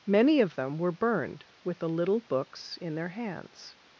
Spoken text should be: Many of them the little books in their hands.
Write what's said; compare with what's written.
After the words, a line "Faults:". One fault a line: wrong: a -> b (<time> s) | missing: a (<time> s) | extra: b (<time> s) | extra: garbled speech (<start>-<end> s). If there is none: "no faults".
Many of them were burned with the little books in their hands.
Faults:
extra: were burned with (0.8 s)